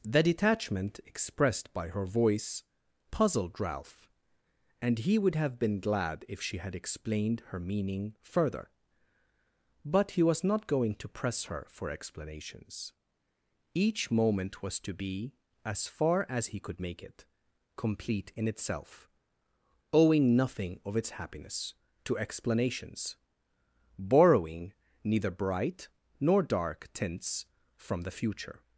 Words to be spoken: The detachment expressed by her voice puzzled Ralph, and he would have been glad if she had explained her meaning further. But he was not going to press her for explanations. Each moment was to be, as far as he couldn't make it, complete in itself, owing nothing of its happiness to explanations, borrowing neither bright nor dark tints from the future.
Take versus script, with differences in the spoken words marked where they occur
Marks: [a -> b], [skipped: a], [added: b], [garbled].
The detachment expressed by her voice puzzled Ralph, and he would have been glad if she had explained her meaning further. But he was not going to press her for explanations. Each moment was to be, as far as he [couldn't -> could] make it, complete in itself, owing nothing of its happiness to explanations, borrowing neither bright nor dark tints from the future.